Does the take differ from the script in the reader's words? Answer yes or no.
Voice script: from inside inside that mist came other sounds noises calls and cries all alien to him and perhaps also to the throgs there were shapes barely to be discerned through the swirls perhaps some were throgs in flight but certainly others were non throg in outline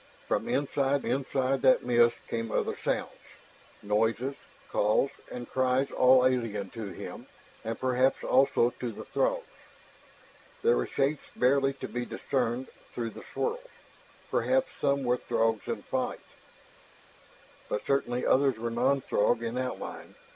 no